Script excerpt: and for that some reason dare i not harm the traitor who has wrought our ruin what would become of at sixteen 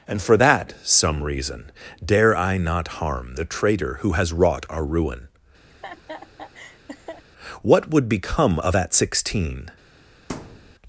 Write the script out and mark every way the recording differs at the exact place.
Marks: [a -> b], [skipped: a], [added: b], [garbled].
and for that some reason dare i not harm the traitor who has wrought our ruin what would become of at sixteen